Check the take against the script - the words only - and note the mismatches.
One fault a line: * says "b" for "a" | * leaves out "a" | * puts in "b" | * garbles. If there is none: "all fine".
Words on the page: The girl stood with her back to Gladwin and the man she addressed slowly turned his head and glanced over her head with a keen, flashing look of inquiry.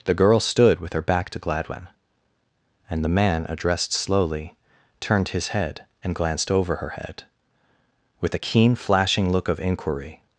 * leaves out "she"